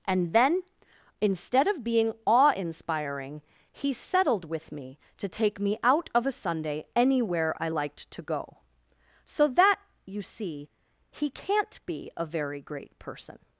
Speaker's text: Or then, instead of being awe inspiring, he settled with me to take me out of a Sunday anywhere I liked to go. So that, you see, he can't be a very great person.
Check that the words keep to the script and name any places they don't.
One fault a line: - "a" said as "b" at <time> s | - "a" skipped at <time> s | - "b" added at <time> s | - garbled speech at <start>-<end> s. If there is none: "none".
- "Or" said as "And" at 0.1 s